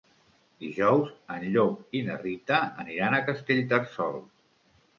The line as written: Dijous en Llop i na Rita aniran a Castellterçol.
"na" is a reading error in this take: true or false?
false